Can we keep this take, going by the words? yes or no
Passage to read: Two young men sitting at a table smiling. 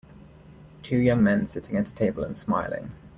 no